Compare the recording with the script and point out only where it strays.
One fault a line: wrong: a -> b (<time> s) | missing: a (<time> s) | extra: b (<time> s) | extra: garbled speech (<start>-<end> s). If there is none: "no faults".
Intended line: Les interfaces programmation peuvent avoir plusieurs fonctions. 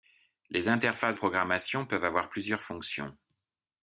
no faults